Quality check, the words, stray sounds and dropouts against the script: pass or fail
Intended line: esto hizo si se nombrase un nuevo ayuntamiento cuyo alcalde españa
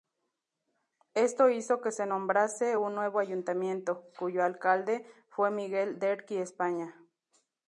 fail